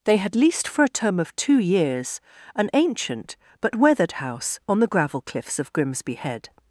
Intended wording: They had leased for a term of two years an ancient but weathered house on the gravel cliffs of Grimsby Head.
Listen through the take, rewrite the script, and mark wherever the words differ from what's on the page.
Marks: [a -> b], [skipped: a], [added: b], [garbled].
They had leased for a term of two years an ancient but weathered house on the gravel cliffs of Grimsby Head.